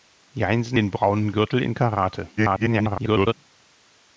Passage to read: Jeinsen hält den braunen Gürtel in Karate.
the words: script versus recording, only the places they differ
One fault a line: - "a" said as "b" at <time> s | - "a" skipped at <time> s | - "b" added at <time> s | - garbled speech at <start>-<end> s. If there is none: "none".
- "hält" skipped at 0.8 s
- garbled speech at 2.4-3.3 s